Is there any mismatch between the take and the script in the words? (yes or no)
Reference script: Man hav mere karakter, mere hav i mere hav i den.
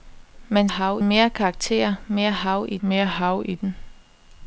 no